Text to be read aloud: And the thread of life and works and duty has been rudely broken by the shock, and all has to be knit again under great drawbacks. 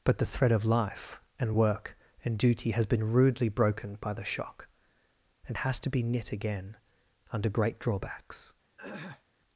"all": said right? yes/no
no